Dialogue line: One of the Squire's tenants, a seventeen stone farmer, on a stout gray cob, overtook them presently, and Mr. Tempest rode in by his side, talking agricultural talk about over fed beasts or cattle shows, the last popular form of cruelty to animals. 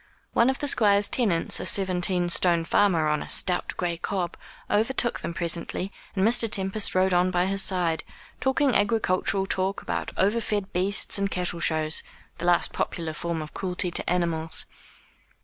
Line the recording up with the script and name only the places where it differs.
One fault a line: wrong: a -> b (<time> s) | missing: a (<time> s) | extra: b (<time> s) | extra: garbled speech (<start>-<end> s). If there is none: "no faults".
wrong: in -> on (7.1 s)
wrong: or -> and (11.2 s)